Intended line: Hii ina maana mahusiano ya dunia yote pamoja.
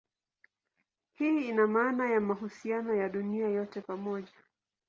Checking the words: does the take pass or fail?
fail